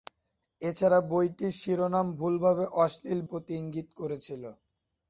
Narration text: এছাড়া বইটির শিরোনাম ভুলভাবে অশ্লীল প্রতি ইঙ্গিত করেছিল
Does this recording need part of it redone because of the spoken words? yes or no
no